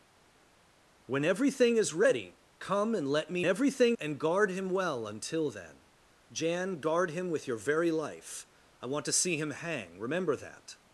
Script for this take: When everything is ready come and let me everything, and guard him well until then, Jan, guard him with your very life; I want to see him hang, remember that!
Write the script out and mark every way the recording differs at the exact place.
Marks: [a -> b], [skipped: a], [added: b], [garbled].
When everything is ready come and let me everything, and guard him well until then, Jan, guard him with your very life; I want to see him hang, remember that!